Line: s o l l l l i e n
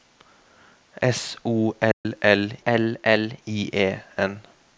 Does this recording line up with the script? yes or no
yes